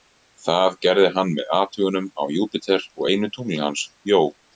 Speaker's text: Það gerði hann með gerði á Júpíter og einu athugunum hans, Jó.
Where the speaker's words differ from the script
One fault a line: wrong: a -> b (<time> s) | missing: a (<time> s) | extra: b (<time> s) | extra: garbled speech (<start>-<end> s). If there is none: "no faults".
wrong: gerði -> athugunum (1.6 s)
wrong: athugunum -> tungli (3.4 s)